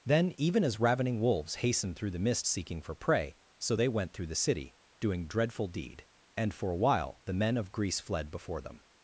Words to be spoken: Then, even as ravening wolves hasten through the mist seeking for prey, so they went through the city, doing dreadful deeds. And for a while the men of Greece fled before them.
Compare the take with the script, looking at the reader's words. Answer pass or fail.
fail